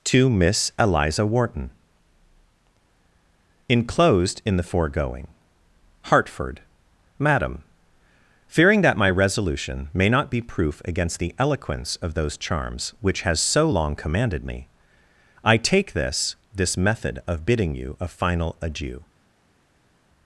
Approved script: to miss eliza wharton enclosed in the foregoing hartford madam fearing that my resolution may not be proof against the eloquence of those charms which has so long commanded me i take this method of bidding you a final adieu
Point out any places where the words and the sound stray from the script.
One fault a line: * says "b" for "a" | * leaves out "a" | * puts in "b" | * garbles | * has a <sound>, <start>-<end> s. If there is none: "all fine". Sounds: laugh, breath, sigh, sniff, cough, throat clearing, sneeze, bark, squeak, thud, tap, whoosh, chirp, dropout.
* puts in "this"